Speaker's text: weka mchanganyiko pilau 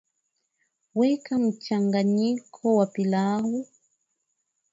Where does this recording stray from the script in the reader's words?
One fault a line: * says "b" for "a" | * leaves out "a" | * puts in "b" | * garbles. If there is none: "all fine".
* puts in "wa"